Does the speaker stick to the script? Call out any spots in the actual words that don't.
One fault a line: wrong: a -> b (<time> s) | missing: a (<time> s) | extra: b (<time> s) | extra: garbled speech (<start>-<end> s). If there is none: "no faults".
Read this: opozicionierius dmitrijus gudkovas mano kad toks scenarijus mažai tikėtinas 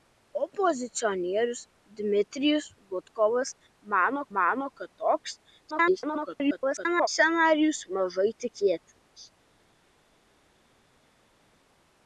extra: mano (4.4 s)
extra: garbled speech (5.7-7.1 s)